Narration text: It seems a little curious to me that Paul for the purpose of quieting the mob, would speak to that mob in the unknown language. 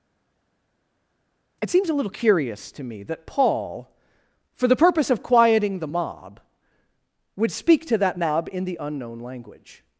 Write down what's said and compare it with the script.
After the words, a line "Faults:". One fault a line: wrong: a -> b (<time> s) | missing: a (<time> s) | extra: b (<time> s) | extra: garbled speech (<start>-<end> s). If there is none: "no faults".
It seems a little curious to me that Paul for the purpose of quieting the mob, would speak to that mob in the unknown language.
Faults:
no faults